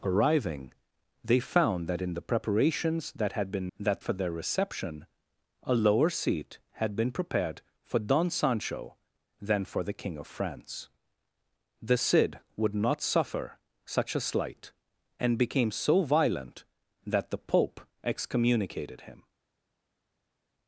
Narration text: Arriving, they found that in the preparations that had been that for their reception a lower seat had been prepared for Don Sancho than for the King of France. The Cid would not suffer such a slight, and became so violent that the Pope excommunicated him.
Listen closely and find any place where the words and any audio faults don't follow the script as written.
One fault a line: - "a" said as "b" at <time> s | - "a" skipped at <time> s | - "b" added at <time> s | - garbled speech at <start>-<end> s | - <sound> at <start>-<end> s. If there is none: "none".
none